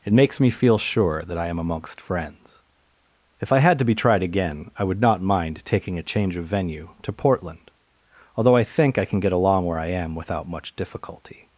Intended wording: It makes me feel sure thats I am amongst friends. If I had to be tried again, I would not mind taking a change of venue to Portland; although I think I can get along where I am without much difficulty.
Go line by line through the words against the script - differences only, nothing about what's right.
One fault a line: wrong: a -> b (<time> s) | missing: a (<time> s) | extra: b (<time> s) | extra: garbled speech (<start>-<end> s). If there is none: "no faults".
wrong: thats -> that (1.2 s)